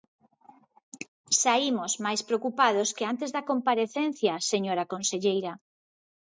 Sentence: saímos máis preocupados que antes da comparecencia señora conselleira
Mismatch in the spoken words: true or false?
false